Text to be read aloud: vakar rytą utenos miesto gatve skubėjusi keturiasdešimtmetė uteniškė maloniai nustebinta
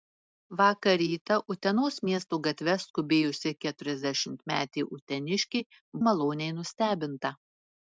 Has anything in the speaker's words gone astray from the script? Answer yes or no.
no